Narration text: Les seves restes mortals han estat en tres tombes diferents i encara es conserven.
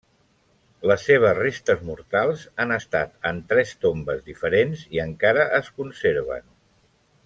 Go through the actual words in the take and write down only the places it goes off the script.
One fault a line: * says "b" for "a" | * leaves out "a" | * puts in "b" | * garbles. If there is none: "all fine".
all fine